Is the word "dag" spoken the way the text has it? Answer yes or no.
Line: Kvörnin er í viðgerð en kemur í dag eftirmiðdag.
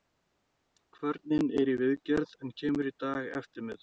yes